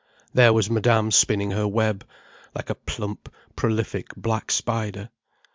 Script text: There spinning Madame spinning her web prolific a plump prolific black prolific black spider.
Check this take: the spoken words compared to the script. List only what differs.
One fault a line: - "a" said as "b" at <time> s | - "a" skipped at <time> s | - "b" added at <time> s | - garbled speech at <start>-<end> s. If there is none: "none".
- "spinning" said as "was" at 0.5 s
- "prolific" said as "like" at 2.5 s
- "prolific black" skipped at 4.5 s